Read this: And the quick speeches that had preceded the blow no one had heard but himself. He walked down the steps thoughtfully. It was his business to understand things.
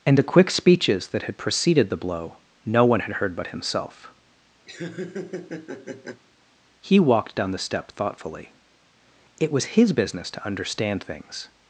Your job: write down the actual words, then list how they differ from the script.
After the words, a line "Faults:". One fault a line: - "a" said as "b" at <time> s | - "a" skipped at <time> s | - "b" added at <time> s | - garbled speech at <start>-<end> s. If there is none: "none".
And the quick speeches that had preceded the blow no one had heard but himself. He walked down the step thoughtfully. It was his business to understand things.
Faults:
- "steps" said as "step" at 7.6 s